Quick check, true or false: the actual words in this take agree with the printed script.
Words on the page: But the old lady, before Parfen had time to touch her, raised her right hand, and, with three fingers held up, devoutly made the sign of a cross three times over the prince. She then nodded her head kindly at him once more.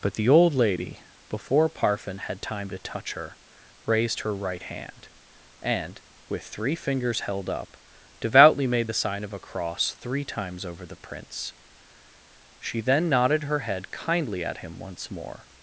true